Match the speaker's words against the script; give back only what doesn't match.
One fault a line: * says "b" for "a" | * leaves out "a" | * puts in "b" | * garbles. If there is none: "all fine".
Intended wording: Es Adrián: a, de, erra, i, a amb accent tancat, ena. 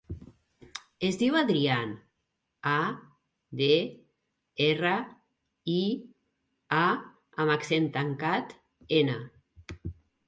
* puts in "diu"